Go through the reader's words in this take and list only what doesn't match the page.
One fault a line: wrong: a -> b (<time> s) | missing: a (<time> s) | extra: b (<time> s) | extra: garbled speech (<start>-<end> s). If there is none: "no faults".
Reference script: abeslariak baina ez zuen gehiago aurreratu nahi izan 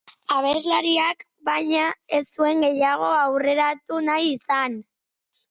no faults